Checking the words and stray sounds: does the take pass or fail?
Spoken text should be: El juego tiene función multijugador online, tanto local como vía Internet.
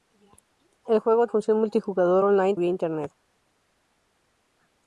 fail